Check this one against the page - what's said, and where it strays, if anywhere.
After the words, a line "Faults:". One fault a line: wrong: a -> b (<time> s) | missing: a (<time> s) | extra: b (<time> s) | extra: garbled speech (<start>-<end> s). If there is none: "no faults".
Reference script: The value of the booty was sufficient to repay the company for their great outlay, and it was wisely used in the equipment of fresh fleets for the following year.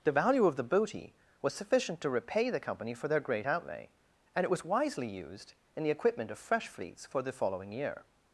The value of the booty was sufficient to repay the company for their great outlay, and it was wisely used in the equipment of fresh fleets for the following year.
Faults:
no faults